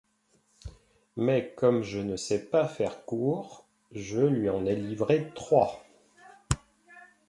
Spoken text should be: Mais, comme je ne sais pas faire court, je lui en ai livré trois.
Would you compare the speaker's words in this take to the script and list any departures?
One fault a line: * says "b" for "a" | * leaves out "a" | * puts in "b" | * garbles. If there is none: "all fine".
all fine